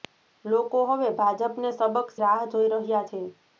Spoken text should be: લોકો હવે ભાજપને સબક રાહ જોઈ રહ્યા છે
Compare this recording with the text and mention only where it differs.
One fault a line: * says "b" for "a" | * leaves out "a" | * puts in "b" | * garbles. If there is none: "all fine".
all fine